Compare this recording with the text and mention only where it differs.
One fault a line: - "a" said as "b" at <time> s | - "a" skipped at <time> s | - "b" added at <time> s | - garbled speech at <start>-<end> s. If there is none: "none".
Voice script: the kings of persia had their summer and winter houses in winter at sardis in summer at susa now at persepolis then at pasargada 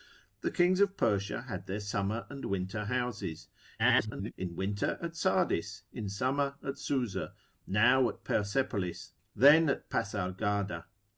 - garbled speech at 3.8-4.3 s